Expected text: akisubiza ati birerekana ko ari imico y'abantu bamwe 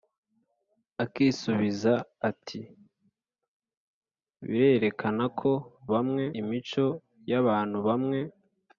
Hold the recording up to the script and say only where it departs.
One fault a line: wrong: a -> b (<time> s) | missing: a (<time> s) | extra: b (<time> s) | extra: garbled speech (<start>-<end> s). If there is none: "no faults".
wrong: ari -> bamwe (5.9 s)